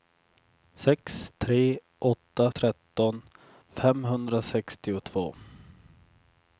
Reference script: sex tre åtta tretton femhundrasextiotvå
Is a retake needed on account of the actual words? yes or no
no